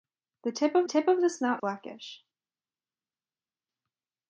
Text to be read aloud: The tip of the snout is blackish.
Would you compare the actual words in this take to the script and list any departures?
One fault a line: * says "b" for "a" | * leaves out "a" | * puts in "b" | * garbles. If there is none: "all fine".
* puts in "tip of"
* leaves out "is"